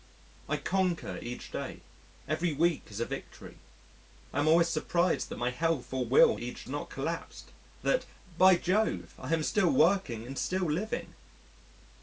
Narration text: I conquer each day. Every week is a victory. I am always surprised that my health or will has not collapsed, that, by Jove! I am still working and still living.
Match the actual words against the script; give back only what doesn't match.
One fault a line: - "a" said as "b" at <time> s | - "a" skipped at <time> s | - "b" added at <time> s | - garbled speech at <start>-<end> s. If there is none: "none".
- "has" said as "each" at 6.4 s